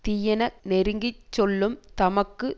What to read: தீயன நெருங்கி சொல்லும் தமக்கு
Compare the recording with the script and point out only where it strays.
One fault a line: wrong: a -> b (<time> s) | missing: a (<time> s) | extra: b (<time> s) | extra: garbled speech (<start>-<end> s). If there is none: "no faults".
no faults